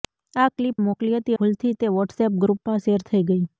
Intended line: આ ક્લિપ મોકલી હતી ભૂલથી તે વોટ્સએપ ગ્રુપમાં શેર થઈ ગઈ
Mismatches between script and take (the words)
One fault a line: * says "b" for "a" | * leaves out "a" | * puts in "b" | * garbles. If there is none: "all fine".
all fine